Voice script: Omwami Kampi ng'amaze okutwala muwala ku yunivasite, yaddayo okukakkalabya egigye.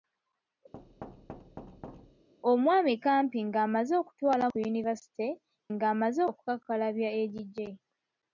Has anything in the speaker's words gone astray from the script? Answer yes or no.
yes